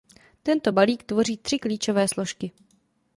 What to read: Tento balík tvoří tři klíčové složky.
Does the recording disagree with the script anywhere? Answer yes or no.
no